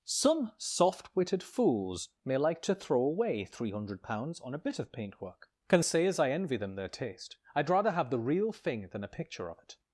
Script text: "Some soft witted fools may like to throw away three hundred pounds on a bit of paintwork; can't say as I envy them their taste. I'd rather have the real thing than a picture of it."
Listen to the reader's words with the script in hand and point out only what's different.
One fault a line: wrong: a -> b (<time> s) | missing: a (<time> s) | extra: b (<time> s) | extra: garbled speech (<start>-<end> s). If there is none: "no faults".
wrong: can't -> can (5.7 s)